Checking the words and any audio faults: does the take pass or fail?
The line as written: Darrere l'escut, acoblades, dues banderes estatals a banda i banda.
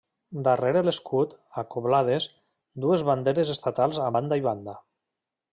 pass